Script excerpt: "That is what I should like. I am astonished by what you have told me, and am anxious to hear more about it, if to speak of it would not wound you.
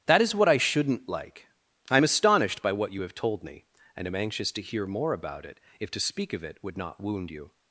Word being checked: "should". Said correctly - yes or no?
no